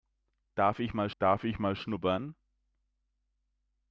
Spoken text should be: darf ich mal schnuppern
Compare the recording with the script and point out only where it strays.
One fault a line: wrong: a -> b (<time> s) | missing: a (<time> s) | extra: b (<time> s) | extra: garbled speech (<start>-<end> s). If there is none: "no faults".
extra: darf ich mal (1.2 s)